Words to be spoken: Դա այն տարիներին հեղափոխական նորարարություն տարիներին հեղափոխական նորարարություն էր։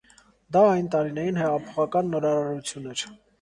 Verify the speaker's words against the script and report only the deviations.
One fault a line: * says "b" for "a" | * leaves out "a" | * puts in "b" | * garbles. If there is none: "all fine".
* leaves out "տարիներին հեղափոխական նորարարություն"